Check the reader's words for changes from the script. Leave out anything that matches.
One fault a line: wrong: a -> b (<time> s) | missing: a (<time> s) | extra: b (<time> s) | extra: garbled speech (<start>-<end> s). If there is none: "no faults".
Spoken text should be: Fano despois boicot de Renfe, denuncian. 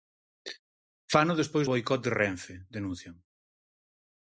no faults